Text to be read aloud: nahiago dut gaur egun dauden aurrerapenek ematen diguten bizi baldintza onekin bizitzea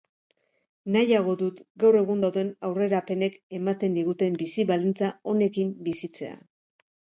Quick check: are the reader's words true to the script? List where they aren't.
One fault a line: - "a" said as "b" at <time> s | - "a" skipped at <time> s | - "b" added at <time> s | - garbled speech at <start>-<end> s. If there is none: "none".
none